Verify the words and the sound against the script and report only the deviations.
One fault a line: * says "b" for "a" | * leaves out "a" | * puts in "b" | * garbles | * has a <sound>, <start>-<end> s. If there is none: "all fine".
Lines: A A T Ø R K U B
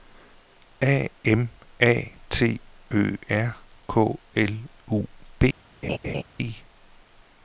* puts in "M"
* puts in "L"
* has a laugh, 5.8-6.2 s